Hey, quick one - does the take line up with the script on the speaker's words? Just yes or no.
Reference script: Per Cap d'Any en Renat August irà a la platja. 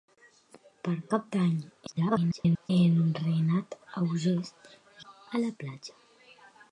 no